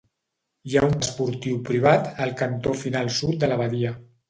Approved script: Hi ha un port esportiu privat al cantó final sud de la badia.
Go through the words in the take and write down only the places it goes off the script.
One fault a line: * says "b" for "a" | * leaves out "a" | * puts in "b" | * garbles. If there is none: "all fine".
* leaves out "port"